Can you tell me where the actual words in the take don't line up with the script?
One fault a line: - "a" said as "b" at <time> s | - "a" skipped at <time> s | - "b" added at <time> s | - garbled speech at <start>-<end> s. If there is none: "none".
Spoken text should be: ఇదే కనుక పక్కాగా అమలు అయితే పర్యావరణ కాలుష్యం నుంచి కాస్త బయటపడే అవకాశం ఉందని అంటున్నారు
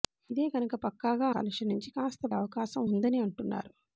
- "అమలు అయితే పర్యావరణ" skipped at 1.3 s
- "బయటపడే" skipped at 2.3 s